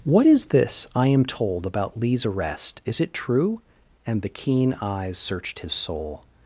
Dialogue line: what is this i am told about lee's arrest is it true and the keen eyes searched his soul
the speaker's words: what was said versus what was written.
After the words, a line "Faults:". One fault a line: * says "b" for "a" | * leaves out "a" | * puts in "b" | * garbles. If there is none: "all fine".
what is this i am told about lee's arrest is it true and the keen eyes searched his soul
Faults:
all fine